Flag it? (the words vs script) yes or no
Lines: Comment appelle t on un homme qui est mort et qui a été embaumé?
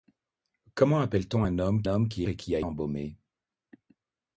yes